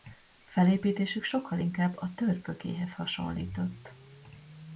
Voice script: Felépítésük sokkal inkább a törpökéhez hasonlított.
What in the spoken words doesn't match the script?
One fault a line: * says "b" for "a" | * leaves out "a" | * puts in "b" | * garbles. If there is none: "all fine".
all fine